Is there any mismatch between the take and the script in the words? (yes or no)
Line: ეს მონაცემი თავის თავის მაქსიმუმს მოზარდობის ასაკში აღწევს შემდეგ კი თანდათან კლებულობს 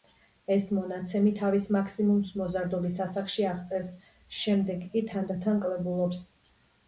yes